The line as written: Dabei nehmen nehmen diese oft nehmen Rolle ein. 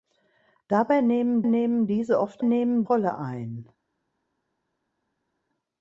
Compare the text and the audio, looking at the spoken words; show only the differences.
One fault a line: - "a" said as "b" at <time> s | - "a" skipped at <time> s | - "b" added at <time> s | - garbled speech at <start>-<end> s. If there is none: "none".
none